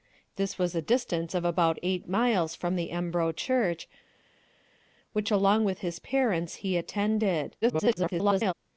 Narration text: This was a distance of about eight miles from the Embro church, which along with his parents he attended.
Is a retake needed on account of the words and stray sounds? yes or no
yes